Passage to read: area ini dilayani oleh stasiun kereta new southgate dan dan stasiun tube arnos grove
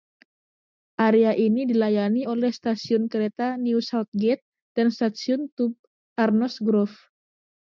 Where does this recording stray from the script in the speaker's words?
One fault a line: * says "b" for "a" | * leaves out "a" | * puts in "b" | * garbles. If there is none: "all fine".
* leaves out "dan"